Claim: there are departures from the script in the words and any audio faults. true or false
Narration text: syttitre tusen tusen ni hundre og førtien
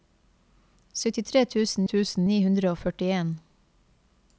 false